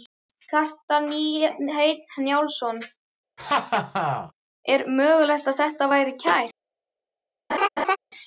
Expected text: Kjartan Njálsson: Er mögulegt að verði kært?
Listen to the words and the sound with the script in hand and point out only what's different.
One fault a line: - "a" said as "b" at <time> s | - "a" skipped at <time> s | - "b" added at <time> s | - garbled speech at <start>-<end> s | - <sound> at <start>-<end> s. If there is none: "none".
- "Hreinn" added at 1.1 s
- laugh at 3.4-4.3 s
- "þetta" added at 5.6 s
- laugh at 7.5-8.0 s